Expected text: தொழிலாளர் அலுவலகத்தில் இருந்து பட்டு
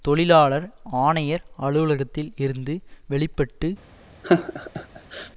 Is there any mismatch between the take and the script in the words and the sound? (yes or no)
yes